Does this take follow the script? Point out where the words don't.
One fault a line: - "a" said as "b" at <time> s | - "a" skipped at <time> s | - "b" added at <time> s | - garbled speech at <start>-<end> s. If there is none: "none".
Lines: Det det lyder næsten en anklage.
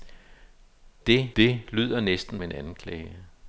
none